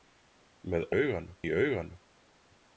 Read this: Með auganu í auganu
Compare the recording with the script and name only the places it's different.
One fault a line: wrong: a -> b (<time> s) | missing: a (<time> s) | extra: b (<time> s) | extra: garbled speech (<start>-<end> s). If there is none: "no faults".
no faults